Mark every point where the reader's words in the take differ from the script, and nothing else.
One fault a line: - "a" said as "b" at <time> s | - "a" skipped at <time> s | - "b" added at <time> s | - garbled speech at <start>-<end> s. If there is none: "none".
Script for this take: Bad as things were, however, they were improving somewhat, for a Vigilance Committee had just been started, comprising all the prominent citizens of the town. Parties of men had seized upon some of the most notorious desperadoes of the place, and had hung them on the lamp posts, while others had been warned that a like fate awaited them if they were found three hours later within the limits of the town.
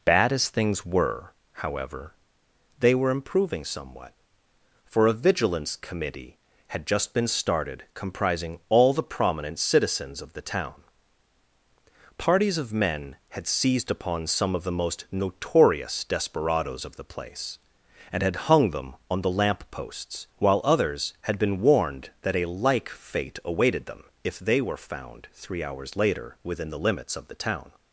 none